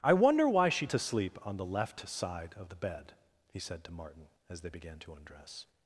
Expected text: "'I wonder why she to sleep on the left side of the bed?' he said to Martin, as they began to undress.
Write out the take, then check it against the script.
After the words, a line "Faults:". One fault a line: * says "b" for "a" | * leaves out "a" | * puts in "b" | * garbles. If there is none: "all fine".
"'I wonder why she to sleep on the left side of the bed?' he said to Martin, as they began to undress.
Faults:
all fine